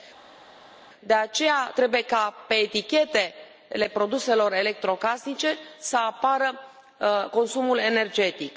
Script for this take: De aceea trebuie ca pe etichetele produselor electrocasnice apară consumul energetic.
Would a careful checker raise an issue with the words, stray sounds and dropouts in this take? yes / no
yes